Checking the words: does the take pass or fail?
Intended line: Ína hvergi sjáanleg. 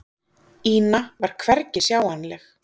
fail